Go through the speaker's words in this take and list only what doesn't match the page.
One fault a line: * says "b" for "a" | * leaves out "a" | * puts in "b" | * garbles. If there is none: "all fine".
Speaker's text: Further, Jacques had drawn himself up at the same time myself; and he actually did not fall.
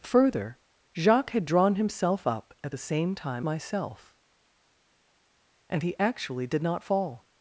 all fine